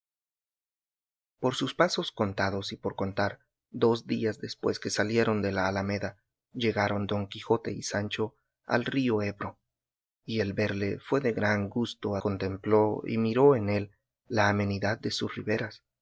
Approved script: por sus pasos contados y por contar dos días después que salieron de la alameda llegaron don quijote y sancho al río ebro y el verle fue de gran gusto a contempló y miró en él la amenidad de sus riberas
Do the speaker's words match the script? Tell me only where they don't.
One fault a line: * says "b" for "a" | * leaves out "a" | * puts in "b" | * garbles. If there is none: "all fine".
all fine